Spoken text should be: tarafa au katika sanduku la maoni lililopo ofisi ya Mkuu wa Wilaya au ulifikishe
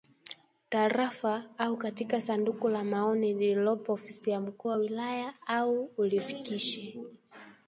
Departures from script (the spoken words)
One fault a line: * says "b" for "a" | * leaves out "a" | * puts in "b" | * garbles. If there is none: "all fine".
all fine